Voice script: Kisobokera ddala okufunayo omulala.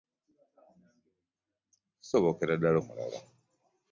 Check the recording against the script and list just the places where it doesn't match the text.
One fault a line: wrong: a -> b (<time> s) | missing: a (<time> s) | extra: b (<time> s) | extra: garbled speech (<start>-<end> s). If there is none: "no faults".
missing: okufunayo (2.8 s)